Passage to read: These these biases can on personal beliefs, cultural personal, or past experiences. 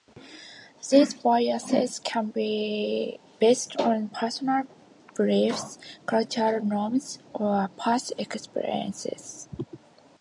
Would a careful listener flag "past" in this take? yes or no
no